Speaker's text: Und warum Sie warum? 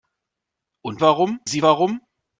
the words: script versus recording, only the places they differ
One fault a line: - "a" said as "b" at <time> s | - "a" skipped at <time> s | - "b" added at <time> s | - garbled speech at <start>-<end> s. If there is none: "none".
none